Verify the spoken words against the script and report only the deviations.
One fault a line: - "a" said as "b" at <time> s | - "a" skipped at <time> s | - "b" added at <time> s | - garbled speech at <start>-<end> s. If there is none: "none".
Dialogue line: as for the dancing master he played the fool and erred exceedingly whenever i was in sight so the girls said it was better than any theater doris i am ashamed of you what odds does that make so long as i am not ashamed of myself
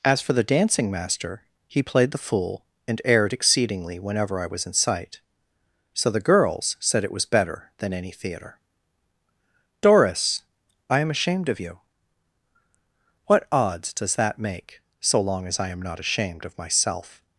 none